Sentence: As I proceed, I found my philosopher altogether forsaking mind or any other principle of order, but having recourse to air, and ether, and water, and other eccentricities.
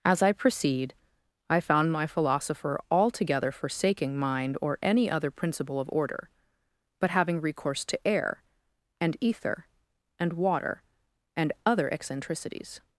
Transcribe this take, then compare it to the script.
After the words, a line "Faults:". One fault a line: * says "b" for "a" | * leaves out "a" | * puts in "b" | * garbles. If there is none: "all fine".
As I proceed, I found my philosopher altogether forsaking mind or any other principle of order, but having recourse to air, and ether, and water, and other eccentricities.
Faults:
all fine